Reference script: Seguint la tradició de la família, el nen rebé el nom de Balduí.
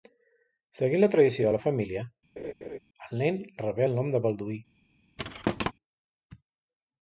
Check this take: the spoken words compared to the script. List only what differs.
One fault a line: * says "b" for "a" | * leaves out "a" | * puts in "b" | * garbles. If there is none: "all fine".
all fine